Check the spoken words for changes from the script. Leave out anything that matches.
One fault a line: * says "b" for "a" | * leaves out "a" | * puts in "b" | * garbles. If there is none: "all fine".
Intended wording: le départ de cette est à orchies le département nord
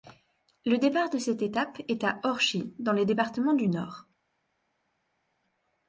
* puts in "étape"
* puts in "dans"
* puts in "du"